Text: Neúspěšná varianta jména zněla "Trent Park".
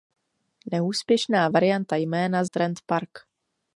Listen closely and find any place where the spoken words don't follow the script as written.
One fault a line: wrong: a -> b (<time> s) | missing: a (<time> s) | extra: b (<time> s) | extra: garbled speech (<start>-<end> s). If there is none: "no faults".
missing: zněla (2.4 s)